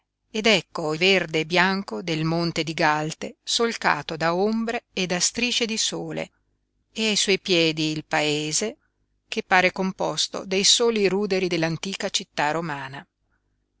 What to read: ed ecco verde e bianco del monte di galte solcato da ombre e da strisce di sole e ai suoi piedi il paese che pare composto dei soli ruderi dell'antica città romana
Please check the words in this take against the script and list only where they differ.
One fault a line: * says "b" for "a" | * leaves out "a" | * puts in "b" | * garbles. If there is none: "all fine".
all fine